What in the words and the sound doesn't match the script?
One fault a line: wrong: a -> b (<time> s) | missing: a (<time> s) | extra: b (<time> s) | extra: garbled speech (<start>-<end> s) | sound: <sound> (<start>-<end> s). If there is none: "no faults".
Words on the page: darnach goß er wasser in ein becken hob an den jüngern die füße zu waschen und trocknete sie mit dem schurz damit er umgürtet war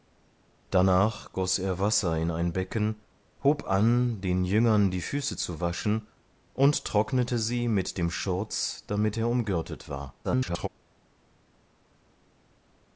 extra: garbled speech (10.2-10.7 s)